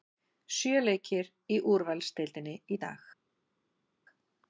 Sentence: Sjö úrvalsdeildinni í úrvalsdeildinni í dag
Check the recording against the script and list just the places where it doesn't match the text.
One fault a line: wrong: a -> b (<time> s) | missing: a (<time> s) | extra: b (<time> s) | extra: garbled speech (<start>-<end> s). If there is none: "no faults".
wrong: úrvalsdeildinni -> leikir (0.8 s)